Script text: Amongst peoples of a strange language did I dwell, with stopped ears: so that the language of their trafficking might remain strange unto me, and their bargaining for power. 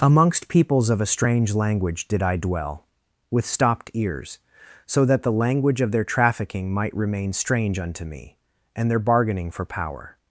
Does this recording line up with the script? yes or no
yes